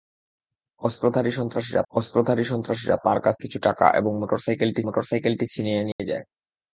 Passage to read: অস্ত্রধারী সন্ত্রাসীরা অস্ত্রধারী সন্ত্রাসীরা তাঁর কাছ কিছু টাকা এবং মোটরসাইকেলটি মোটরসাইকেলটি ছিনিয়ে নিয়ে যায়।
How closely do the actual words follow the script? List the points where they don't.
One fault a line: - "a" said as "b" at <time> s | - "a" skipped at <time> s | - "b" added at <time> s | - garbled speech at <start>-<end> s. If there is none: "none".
none